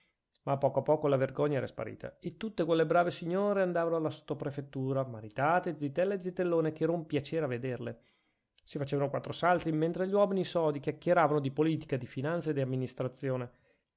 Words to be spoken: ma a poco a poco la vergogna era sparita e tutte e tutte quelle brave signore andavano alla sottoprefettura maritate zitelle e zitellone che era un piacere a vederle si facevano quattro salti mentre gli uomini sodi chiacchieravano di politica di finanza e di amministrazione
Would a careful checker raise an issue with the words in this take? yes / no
yes